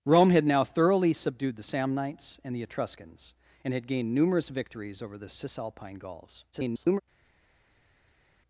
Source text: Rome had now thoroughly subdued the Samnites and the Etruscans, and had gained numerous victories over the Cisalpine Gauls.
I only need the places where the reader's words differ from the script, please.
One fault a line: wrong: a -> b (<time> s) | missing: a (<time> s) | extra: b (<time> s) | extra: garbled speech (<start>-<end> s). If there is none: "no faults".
extra: garbled speech (6.5-7.0 s)